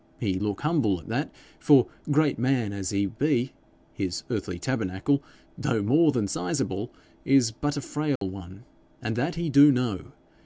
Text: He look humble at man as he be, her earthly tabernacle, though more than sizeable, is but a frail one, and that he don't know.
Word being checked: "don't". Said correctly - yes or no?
no